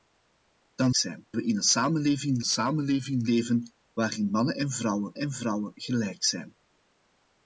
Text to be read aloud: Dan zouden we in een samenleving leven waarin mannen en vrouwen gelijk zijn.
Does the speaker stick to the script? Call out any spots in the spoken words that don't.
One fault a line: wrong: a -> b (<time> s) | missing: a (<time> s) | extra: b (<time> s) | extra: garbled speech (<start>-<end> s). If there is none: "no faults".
wrong: zouden -> zijn (0.9 s)
extra: samenleving (2.4 s)
extra: en vrouwen (5.2 s)